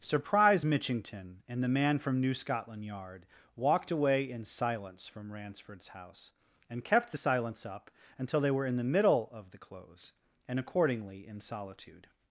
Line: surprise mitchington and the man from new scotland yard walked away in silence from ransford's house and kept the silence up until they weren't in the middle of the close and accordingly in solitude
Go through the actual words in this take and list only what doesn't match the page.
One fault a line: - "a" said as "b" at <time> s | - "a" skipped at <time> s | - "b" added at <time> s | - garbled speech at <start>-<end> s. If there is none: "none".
- "weren't" said as "were" at 8.5 s